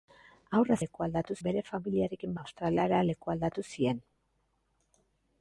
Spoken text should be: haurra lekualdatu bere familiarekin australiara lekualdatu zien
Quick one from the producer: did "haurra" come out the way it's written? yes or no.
yes